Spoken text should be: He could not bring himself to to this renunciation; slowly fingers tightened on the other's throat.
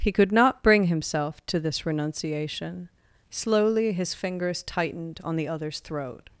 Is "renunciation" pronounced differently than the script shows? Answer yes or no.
no